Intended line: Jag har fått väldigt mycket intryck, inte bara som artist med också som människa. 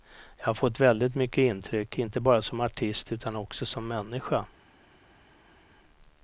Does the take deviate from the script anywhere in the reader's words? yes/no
yes